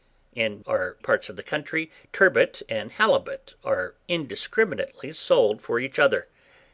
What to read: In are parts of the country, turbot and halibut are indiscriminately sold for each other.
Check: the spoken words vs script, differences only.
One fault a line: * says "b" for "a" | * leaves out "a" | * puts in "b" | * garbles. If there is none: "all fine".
all fine